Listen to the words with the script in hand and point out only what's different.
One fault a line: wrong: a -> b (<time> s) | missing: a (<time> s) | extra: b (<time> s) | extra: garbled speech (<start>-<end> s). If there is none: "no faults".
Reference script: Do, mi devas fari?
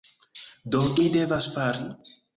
no faults